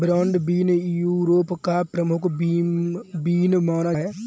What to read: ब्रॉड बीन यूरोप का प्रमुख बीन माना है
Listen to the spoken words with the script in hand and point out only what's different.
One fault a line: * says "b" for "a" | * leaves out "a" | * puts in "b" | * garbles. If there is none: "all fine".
all fine